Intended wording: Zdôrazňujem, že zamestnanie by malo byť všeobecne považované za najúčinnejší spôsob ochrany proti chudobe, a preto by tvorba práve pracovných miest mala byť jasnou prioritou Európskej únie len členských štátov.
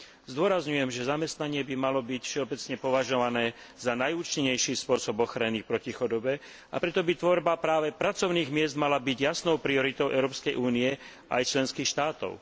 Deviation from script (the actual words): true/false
true